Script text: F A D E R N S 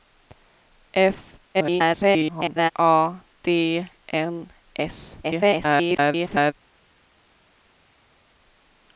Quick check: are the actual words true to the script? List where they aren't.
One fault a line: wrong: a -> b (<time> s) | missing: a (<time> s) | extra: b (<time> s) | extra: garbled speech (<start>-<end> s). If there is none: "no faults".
extra: garbled speech (1.5-2.7 s)
missing: E R (3.9 s)
extra: garbled speech (5.2-6.5 s)